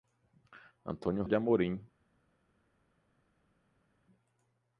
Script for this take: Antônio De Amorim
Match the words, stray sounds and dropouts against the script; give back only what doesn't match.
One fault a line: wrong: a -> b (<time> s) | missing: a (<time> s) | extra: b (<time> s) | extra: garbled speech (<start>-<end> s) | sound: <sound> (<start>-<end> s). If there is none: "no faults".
no faults